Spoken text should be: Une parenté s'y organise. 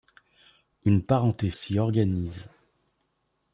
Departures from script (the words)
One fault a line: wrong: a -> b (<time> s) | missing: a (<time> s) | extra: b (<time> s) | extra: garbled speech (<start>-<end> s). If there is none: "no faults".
no faults